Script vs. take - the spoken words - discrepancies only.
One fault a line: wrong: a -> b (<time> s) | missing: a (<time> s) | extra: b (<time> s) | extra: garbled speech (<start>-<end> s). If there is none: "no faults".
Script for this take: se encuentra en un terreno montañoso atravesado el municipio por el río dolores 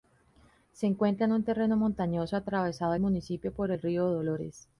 no faults